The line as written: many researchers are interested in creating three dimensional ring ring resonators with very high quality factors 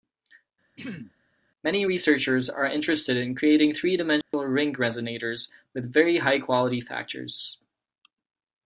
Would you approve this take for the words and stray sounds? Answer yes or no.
no